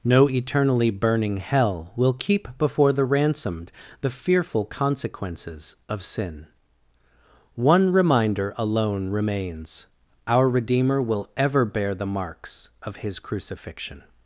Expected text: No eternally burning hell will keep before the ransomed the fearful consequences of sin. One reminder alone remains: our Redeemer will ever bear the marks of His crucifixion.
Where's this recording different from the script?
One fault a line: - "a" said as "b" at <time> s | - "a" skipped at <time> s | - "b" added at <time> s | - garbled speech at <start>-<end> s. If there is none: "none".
none